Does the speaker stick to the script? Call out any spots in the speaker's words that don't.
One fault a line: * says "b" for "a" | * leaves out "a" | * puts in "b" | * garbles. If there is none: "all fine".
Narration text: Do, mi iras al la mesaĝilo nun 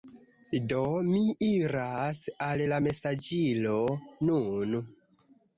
all fine